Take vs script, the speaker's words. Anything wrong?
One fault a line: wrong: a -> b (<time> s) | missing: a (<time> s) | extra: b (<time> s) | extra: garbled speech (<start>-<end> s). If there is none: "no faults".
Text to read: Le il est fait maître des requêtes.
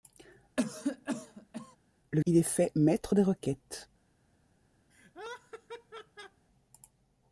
no faults